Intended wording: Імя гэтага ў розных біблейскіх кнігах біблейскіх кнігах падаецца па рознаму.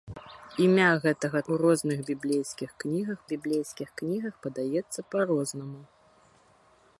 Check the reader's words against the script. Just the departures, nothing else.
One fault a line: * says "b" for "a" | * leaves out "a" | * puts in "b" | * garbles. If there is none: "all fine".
all fine